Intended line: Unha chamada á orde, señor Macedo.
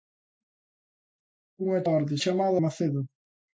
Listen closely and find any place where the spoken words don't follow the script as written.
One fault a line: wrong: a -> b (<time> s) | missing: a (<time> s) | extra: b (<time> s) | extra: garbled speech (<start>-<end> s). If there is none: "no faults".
missing: chamada (1.8 s)
wrong: señor -> chamada (2.2 s)